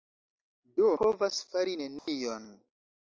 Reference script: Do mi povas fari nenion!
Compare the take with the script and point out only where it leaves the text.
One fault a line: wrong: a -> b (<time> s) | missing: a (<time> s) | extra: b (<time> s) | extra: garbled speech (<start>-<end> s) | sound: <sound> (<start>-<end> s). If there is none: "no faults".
missing: mi (0.9 s)
sound: dropout (2.0-2.1 s)